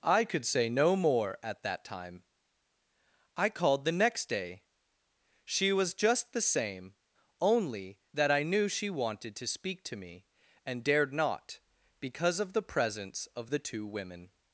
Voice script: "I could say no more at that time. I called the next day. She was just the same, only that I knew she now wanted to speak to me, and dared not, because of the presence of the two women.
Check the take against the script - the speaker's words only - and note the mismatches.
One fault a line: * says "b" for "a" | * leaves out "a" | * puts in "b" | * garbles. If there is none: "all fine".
* leaves out "now"